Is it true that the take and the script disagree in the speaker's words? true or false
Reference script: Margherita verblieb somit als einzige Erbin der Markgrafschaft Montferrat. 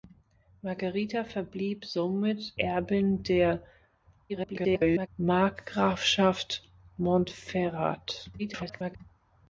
true